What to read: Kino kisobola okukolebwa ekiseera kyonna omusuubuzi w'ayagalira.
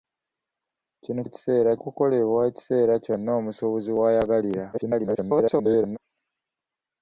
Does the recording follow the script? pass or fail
fail